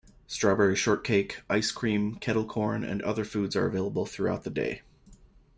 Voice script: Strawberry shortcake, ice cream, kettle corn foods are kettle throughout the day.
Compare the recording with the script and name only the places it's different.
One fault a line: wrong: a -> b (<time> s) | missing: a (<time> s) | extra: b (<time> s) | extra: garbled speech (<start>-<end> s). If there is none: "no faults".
extra: and other (2.8 s)
wrong: kettle -> available (3.7 s)